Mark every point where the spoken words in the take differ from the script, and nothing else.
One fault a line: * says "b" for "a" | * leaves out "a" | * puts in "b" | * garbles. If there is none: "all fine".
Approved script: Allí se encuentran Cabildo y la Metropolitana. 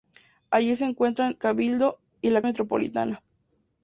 all fine